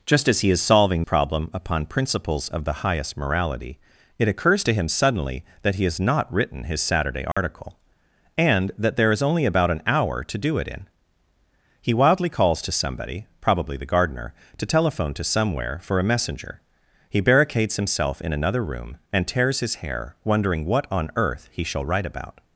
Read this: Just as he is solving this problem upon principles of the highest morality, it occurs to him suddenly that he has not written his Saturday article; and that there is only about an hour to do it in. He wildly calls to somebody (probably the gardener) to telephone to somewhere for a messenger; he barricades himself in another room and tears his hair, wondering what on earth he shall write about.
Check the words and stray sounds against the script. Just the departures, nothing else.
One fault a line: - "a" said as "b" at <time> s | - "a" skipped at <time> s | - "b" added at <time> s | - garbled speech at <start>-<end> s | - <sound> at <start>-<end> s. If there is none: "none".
- "this" skipped at 1.0 s
- dropout at 7.3-7.4 s